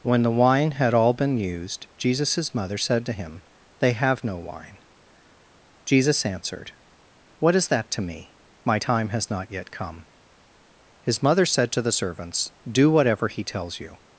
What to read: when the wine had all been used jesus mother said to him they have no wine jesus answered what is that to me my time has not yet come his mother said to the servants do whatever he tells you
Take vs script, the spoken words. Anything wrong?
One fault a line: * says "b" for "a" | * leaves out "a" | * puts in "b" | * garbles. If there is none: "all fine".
all fine